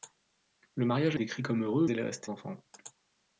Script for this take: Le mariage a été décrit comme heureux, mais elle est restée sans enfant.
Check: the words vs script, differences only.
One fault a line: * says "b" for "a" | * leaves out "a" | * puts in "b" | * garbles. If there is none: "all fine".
* leaves out "été"
* leaves out "mais"
* leaves out "sans"